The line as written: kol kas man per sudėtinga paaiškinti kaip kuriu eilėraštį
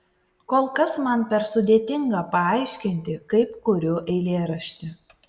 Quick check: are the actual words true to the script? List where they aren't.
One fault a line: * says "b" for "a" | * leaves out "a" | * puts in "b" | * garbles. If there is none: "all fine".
all fine